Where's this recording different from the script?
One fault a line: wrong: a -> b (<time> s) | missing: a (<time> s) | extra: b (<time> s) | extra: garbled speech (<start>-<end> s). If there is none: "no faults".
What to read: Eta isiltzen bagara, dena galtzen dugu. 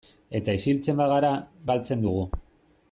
missing: dena (1.3 s)